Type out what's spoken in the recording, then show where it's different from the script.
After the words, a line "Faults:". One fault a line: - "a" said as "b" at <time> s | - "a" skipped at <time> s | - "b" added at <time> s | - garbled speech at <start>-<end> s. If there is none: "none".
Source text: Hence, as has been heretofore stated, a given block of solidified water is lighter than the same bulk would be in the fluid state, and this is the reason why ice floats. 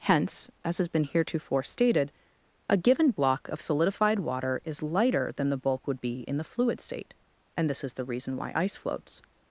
Hence, as has been heretofore stated, a given block of solidified water is lighter than the bulk would be in the fluid state, and this is the reason why ice floats.
Faults:
- "same" skipped at 5.6 s